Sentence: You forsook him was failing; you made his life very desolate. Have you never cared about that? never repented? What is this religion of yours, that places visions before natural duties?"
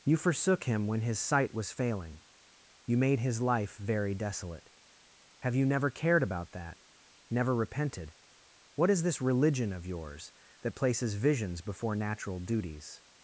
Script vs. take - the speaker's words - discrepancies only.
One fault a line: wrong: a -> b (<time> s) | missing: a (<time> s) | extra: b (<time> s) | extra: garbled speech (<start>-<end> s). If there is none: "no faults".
extra: when his sight (0.9 s)